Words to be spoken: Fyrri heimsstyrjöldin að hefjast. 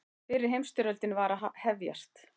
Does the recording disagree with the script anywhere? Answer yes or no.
yes